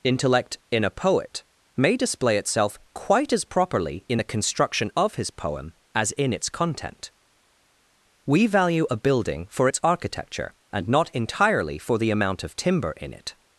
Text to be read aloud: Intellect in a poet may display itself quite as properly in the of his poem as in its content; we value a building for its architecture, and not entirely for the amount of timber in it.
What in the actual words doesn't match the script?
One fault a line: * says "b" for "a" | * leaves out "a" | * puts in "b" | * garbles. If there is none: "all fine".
* puts in "construction"